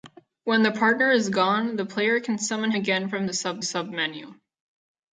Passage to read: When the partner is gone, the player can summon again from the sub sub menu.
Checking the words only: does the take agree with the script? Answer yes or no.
yes